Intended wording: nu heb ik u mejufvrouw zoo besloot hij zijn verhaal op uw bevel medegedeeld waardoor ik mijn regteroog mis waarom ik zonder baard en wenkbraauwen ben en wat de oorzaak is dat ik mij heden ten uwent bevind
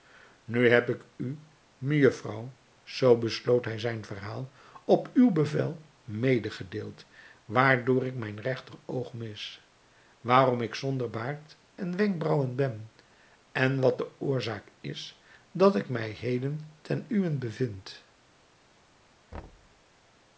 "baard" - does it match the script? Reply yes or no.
yes